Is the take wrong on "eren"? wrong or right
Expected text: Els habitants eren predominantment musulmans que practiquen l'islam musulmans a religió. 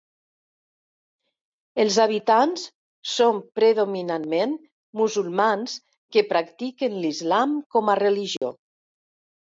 wrong